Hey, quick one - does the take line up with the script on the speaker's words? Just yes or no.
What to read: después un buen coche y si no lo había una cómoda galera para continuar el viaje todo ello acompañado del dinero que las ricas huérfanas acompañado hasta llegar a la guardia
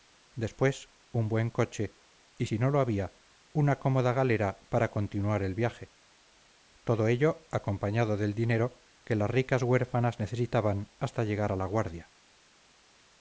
no